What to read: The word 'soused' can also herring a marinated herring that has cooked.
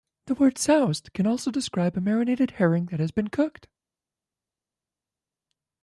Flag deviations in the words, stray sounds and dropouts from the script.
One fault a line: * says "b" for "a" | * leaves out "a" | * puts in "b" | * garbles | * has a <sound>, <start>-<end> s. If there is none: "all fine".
* says "describe" for "herring"
* puts in "been"